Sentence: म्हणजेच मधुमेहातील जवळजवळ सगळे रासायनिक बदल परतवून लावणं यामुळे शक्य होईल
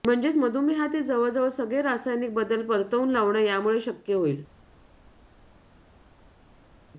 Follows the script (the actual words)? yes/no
yes